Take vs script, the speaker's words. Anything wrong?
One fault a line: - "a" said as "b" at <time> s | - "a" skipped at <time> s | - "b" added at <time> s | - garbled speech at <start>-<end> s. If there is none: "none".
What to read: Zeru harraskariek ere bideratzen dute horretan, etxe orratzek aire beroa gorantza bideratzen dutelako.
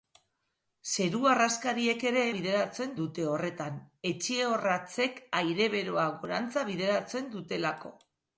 none